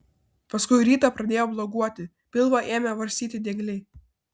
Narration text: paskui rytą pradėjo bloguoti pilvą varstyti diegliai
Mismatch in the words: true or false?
true